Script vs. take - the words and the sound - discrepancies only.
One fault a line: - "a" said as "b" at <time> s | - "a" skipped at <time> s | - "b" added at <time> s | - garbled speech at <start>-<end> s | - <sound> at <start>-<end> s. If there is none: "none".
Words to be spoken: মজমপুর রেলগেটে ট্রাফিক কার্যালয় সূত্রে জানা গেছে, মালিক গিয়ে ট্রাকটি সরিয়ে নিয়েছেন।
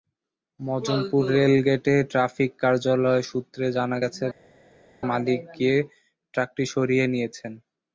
none